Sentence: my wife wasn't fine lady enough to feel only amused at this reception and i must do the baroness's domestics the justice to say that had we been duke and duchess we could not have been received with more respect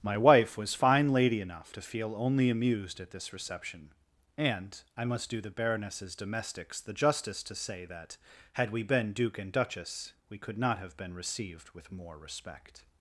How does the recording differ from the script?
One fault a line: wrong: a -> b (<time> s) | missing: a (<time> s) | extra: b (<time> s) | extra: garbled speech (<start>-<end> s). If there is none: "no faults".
wrong: wasn't -> was (0.6 s)